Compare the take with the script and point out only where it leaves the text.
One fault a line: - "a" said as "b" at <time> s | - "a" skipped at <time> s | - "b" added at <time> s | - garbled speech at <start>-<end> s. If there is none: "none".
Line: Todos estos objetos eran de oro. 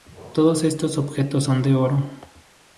- "eran" said as "son" at 1.4 s